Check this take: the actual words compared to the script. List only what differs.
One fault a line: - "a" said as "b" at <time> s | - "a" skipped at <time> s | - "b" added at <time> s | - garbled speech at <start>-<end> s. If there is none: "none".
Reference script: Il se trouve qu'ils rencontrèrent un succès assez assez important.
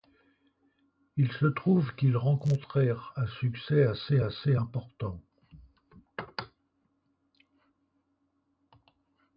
none